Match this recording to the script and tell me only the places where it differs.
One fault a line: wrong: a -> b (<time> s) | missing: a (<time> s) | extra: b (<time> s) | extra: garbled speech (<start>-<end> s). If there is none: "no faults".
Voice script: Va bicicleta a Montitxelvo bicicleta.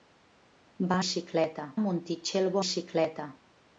no faults